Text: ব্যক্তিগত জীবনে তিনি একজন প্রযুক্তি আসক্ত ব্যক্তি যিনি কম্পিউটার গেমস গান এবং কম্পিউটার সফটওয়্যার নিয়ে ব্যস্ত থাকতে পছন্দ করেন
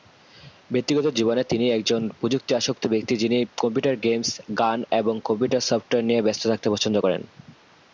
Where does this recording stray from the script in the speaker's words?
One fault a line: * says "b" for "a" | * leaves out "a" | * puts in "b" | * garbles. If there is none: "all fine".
all fine